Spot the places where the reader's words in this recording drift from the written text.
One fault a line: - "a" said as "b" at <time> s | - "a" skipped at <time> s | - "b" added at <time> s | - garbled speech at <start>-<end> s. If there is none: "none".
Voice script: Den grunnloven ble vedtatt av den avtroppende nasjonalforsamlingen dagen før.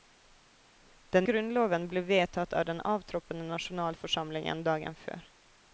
none